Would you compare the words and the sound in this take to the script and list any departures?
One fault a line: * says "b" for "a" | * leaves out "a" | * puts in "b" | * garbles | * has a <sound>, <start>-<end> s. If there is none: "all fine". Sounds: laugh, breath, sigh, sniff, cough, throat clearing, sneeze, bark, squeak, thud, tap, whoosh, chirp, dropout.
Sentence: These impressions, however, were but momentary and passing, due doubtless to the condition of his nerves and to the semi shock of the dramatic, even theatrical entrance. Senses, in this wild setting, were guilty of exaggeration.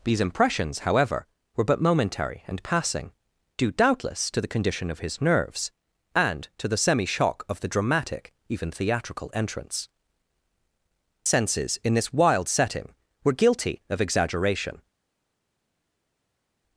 all fine